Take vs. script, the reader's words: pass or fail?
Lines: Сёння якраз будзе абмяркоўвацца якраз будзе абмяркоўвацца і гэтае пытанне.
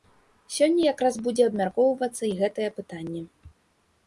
fail